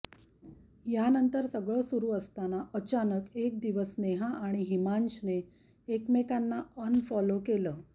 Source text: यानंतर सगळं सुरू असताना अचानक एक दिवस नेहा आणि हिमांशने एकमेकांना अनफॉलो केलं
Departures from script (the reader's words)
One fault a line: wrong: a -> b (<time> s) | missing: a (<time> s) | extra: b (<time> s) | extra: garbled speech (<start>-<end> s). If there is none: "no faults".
no faults